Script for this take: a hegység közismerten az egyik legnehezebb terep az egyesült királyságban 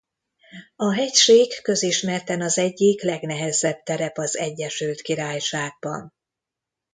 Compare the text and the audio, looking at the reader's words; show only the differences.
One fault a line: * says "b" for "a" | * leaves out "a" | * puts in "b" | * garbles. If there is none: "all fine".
all fine